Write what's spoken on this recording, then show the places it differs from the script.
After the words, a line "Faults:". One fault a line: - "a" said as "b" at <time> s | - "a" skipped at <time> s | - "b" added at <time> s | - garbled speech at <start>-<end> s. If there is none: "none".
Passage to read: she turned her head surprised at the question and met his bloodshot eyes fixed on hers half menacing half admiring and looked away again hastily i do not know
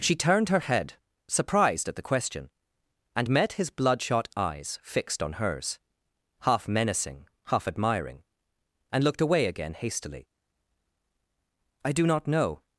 she turned her head surprised at the question and met his bloodshot eyes fixed on hers half menacing half admiring and looked away again hastily i do not know
Faults:
none